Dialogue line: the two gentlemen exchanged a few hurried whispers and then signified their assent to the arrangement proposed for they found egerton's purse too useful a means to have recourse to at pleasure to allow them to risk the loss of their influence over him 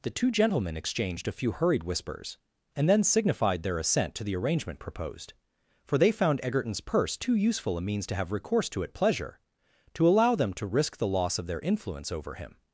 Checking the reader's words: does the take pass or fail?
pass